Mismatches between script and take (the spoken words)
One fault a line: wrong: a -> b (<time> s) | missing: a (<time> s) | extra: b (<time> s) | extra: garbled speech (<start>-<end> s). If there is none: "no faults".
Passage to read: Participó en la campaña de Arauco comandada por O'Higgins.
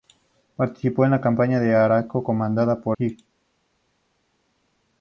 no faults